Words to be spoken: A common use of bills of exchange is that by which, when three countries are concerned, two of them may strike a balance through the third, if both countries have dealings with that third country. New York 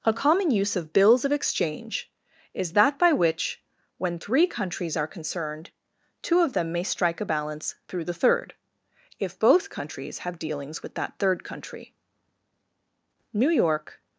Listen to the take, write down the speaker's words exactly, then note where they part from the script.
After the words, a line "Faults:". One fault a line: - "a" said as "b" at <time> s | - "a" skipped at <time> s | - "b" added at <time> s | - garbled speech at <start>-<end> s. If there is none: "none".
A common use of bills of exchange is that by which, when three countries are concerned, two of them may strike a balance through the third, if both countries have dealings with that third country. New York
Faults:
none